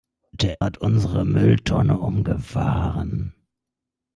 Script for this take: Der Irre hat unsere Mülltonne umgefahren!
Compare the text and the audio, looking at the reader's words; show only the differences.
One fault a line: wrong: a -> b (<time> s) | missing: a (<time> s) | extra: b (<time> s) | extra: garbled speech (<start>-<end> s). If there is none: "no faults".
missing: Irre (0.6 s)